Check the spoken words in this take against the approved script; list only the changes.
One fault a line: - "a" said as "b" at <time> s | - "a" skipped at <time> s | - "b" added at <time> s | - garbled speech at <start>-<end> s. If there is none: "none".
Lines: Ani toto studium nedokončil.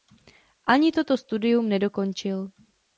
none